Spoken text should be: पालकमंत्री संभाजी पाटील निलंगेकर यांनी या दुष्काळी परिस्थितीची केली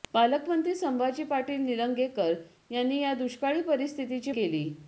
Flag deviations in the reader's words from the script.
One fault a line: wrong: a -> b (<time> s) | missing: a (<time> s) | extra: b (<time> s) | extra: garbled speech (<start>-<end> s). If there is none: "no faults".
no faults